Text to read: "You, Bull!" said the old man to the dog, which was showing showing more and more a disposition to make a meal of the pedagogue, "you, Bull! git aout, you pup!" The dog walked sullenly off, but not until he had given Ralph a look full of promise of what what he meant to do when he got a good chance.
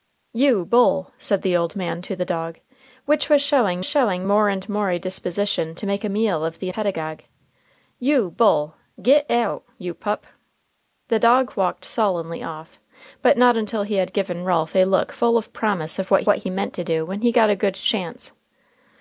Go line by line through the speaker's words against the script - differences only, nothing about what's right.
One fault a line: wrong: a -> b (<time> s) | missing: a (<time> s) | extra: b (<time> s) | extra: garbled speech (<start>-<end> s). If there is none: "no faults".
no faults